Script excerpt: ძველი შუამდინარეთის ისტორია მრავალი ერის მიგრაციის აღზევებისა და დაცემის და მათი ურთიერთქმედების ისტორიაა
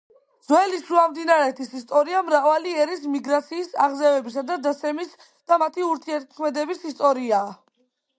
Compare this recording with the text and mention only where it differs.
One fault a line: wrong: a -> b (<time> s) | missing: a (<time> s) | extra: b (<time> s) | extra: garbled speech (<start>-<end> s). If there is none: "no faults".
no faults